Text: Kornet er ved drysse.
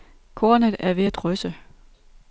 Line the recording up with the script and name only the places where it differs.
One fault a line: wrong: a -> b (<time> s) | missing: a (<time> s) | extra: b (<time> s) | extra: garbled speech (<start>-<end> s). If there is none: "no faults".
extra: at (1.0 s)